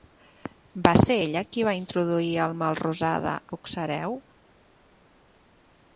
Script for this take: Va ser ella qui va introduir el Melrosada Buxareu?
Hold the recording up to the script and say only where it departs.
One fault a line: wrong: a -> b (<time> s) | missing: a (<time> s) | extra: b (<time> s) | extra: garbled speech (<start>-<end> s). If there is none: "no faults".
no faults